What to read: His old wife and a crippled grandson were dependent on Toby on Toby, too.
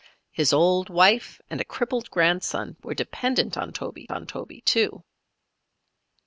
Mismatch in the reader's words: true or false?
false